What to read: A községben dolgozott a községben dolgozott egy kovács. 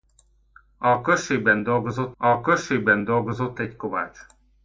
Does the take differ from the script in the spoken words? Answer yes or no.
no